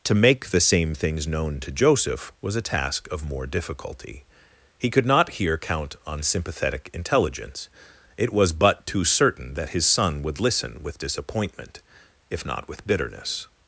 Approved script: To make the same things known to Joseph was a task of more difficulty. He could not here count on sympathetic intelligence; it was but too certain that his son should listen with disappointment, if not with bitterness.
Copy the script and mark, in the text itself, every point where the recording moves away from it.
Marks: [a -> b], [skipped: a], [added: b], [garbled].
To make the same things known to Joseph was a task of more difficulty. He could not here count on sympathetic intelligence; it was but too certain that his son [should -> would] listen with disappointment, if not with bitterness.